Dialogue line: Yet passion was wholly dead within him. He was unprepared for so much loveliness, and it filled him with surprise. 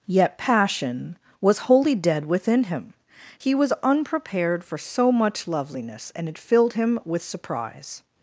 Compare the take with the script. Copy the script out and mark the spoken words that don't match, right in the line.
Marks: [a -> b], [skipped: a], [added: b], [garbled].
Yet passion was wholly dead within him. He was unprepared for so much loveliness, and it filled him with surprise.